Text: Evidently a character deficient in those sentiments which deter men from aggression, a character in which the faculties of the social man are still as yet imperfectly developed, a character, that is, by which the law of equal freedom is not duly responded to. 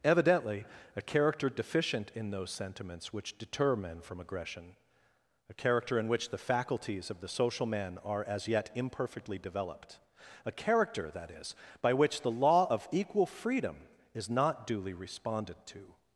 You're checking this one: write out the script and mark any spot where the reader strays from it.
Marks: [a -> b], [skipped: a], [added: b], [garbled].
Evidently a character deficient in those sentiments which deter men from aggression, a character in which the faculties of the social man are [skipped: still] as yet imperfectly developed, a character, that is, by which the law of equal freedom is not duly responded to.